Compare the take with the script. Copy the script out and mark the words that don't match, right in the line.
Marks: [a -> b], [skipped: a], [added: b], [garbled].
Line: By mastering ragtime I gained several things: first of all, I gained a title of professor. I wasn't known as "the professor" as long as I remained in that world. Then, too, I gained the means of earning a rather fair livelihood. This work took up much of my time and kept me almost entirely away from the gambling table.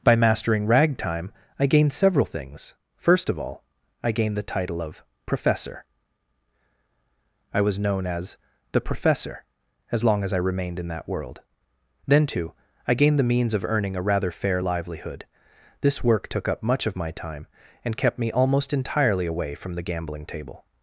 By mastering ragtime I gained several things: first of all, I gained [a -> the] title of professor. I [wasn't -> was] known as "the professor" as long as I remained in that world. Then, too, I gained the means of earning a rather fair livelihood. This work took up much of my time and kept me almost entirely away from the gambling table.